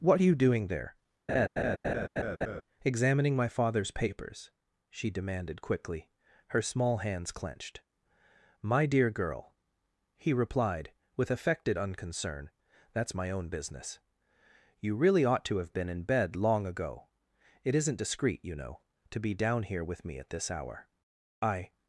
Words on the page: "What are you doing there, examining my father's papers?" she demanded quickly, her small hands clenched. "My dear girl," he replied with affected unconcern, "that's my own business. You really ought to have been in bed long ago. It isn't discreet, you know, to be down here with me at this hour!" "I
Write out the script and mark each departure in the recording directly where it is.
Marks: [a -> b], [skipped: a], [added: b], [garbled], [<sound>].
"What are you doing there, [laugh] examining my father's papers?" she demanded quickly, her small hands clenched. "My dear girl," he replied with affected unconcern, "that's my own business. You really ought to have been in bed long ago. It isn't discreet, you know, to be down here with me at this hour!" "I